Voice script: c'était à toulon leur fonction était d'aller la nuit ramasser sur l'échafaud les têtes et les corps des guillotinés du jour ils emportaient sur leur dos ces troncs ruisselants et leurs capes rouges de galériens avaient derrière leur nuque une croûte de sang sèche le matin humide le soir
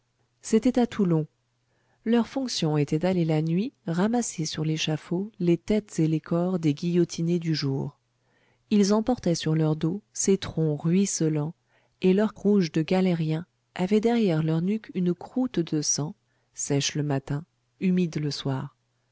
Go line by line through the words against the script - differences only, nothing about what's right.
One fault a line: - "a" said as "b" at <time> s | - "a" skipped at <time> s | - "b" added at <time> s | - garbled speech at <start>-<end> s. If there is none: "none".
- "capes" skipped at 12.3 s